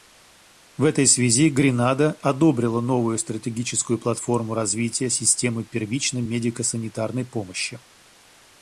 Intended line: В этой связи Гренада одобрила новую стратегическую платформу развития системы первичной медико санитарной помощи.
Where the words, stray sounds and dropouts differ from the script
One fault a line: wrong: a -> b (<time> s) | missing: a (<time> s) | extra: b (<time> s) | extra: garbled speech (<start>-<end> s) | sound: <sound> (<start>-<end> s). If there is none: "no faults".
no faults